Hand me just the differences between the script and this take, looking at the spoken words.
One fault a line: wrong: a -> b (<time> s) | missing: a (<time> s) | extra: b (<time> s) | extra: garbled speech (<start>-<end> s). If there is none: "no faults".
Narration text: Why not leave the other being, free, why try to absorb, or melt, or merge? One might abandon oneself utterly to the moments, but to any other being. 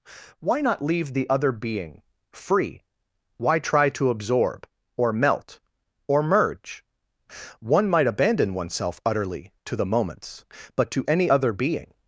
no faults